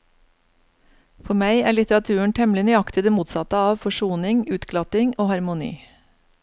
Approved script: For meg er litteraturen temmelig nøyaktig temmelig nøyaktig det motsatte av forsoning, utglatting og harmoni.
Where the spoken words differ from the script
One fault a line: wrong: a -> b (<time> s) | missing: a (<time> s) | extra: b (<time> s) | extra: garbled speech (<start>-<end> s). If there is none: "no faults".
missing: temmelig nøyaktig (3.0 s)